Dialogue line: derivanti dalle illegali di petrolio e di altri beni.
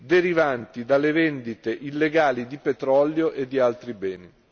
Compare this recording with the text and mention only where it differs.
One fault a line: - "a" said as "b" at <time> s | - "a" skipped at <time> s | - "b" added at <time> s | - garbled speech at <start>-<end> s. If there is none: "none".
- "vendite" added at 1.1 s